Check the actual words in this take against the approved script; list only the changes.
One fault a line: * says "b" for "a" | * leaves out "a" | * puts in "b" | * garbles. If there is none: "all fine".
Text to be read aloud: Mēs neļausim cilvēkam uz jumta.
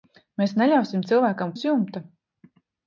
all fine